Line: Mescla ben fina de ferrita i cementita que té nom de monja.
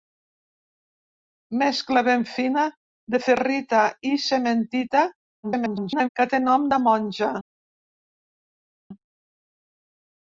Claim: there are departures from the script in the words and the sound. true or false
true